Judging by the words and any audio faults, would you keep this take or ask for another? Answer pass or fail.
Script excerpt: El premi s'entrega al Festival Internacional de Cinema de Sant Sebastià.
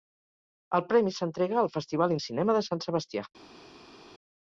fail